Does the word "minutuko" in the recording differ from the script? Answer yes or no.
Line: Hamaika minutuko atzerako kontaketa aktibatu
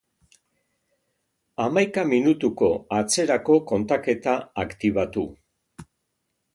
no